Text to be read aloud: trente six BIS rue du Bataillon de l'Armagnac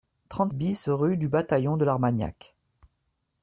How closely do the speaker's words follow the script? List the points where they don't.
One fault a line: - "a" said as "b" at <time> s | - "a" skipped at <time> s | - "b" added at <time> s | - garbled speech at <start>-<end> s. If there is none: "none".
- "six" skipped at 0.5 s